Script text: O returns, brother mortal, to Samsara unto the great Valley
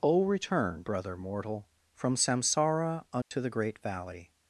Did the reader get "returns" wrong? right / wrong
wrong